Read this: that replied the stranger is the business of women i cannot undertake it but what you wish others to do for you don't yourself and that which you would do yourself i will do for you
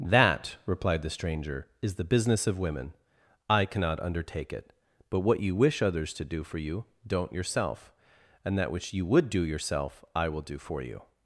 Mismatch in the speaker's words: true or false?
false